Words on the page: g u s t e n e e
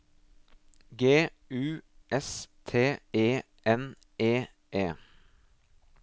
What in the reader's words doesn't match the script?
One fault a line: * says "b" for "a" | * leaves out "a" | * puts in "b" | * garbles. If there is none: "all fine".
all fine